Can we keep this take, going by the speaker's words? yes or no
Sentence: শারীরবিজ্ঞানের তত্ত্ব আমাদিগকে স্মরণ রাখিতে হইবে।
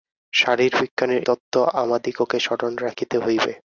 yes